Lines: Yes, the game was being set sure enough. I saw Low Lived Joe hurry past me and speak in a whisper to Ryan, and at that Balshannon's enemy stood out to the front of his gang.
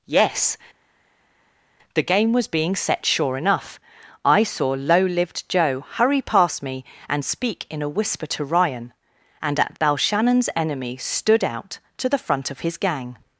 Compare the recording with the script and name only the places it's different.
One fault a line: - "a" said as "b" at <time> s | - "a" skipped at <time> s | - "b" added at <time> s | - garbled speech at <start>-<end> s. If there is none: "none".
- "that" skipped at 9.8 s